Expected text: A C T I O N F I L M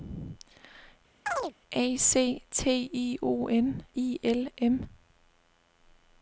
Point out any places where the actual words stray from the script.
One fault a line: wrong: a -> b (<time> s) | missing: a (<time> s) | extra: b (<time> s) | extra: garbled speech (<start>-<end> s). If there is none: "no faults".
missing: F (3.9 s)